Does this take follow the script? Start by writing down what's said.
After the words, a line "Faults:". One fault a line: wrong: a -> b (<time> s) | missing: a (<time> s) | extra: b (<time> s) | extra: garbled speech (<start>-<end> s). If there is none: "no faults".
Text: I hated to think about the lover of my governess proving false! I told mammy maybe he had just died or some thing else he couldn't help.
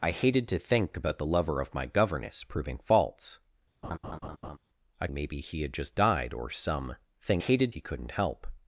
I hated to think about the lover of my governess proving false! I maybe he had just died or some thing hated he couldn't help.
Faults:
missing: told mammy (5.1 s)
wrong: else -> hated (7.4 s)